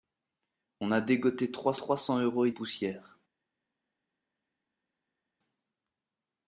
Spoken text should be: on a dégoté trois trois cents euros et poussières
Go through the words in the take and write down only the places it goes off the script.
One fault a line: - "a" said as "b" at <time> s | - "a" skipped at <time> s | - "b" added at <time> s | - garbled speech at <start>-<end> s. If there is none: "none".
none